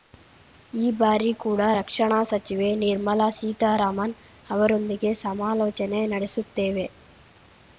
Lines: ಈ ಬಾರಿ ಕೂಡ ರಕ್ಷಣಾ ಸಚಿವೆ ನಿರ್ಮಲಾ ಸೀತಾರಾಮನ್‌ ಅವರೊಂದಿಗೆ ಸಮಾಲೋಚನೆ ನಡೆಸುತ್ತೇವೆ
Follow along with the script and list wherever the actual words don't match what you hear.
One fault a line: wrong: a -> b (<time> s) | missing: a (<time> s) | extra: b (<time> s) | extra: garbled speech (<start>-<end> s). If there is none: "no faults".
no faults